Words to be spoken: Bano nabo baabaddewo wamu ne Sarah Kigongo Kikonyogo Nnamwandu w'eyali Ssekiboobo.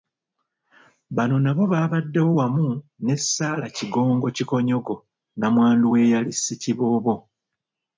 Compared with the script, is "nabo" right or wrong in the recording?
right